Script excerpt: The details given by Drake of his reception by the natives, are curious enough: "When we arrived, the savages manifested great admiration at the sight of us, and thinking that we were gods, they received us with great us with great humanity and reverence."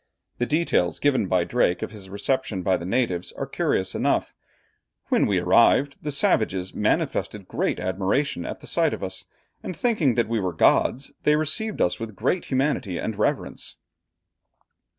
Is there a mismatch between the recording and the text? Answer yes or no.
yes